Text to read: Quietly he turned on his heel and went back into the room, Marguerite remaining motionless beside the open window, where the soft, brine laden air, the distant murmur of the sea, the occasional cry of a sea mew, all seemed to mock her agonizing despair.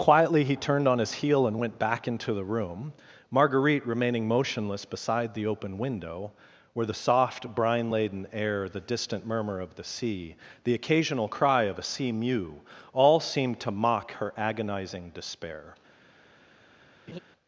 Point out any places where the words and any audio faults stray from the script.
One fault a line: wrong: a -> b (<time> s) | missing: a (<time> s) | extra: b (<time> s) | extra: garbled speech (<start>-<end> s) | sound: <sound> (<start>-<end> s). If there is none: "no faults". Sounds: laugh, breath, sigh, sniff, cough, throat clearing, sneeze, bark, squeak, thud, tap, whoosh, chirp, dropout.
sound: laugh (17.1-17.2 s)